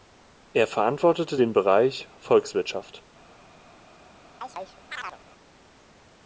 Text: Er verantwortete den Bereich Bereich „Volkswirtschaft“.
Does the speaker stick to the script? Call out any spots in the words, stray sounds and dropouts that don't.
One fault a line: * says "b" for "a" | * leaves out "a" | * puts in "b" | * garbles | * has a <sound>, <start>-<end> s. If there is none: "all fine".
* leaves out "Bereich"
* has a chirp, 4.4-5.2 s